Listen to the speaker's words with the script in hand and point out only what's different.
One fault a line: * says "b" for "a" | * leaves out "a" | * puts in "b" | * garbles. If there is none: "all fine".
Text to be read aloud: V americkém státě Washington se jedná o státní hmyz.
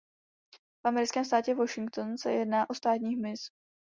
all fine